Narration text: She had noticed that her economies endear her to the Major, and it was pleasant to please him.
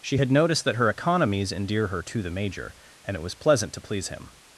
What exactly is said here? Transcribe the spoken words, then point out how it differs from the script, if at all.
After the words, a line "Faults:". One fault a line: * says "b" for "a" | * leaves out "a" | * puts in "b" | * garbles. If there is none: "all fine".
She had noticed that her economies endear her to the Major, and it was pleasant to please him.
Faults:
all fine